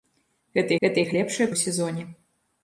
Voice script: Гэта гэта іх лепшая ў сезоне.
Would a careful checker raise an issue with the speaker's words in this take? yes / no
no